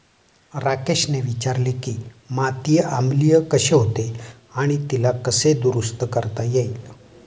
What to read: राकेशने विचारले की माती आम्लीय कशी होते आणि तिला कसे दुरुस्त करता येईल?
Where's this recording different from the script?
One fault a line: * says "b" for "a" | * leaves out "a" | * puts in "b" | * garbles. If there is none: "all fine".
all fine